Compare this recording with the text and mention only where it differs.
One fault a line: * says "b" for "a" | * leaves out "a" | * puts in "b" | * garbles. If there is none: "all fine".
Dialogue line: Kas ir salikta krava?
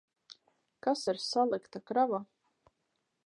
all fine